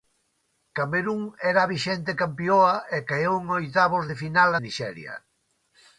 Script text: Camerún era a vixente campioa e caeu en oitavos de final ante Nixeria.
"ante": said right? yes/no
no